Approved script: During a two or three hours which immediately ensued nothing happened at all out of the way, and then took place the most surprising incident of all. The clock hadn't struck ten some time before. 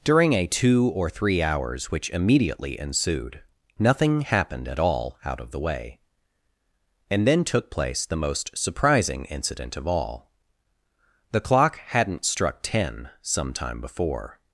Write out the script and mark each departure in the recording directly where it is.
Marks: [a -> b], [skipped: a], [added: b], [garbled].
During a two or three hours which immediately ensued nothing happened at all out of the way, and then took place the most surprising incident of all. The clock hadn't struck ten some time before.